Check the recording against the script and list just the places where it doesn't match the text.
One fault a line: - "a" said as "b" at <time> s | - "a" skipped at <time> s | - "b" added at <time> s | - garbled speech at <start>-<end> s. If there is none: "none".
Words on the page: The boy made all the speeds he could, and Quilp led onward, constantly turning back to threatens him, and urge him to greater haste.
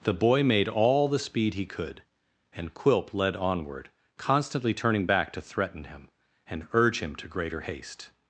- "speeds" said as "speed" at 1.2 s
- "threatens" said as "threaten" at 5.4 s